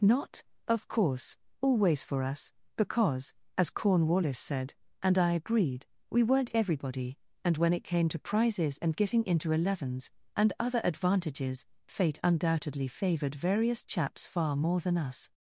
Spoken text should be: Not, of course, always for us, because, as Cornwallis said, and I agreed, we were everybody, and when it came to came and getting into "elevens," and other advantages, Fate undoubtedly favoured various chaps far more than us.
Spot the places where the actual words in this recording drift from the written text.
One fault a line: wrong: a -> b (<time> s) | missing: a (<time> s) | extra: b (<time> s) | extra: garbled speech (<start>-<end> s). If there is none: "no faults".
wrong: were -> weren't (6.2 s)
wrong: came -> prizes (8.2 s)